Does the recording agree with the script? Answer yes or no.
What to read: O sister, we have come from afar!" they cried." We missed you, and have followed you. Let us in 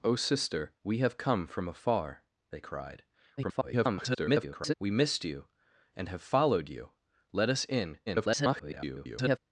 no